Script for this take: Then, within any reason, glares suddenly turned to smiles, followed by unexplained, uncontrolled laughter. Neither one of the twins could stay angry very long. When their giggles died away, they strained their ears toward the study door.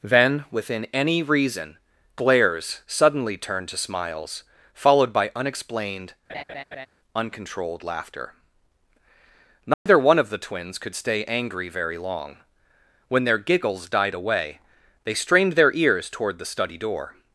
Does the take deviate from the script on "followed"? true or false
false